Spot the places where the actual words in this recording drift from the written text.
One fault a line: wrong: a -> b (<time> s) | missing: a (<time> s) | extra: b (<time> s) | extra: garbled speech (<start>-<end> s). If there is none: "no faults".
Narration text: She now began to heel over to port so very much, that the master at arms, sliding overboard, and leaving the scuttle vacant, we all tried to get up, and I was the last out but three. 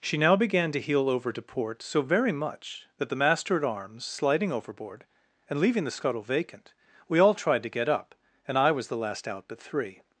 no faults